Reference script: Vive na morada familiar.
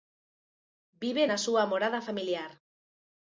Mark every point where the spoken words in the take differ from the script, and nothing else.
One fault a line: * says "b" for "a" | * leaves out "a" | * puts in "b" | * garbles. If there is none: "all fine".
* puts in "súa"